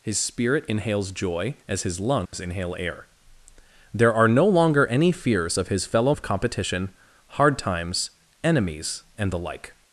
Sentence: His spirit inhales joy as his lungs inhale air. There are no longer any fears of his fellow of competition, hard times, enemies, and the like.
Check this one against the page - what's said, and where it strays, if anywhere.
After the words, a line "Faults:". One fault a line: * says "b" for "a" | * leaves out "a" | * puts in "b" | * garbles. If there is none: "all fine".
His spirit inhales joy as his lungs inhale air. There are no longer any fears of his fellow of competition, hard times, enemies, and the like.
Faults:
all fine